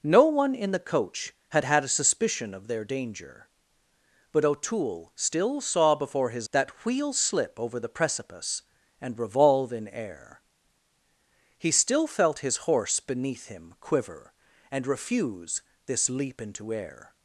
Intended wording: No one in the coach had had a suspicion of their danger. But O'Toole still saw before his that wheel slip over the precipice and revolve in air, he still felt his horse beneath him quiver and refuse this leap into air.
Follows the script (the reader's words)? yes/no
yes